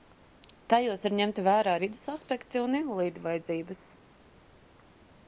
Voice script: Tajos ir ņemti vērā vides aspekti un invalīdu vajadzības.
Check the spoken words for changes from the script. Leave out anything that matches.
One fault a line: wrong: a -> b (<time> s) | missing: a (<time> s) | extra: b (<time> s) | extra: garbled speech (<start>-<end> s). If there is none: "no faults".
no faults